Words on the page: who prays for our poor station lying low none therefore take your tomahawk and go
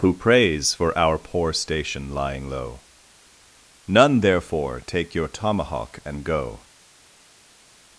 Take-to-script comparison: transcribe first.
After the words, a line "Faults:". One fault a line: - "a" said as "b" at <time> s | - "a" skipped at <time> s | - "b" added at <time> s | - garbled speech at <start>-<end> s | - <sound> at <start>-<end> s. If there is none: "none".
who prays for our poor station lying low none therefore take your tomahawk and go
Faults:
none